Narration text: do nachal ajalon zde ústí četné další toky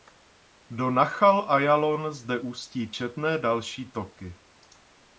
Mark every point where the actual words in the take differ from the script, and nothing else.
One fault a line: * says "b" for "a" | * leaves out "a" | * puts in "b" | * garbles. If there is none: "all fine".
all fine